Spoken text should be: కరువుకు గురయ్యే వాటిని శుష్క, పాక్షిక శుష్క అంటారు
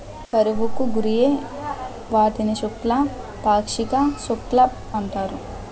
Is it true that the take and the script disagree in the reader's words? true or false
false